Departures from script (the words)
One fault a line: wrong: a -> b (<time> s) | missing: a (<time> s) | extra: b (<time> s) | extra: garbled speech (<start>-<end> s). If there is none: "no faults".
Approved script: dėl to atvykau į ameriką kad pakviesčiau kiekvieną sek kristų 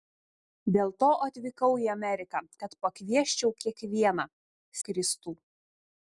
missing: sek (4.3 s)